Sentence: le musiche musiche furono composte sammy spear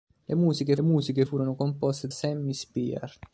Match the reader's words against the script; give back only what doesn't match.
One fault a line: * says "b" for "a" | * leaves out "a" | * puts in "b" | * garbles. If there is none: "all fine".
all fine